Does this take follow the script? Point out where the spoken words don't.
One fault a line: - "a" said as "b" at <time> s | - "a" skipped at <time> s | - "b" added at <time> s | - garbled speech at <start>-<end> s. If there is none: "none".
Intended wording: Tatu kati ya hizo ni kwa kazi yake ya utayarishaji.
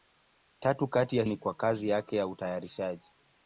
- "hizo" skipped at 1.2 s